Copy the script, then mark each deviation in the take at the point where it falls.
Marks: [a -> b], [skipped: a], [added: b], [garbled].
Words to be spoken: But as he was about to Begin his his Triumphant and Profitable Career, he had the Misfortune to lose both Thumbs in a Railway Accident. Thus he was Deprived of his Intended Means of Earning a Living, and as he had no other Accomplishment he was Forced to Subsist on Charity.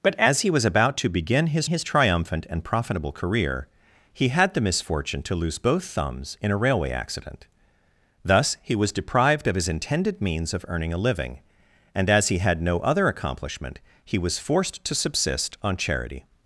But as he was about to Begin his his Triumphant and Profitable Career, he had the Misfortune to lose both Thumbs in a Railway Accident. Thus he was Deprived of his Intended Means of Earning a Living, and as he had no other Accomplishment he was Forced to Subsist on Charity.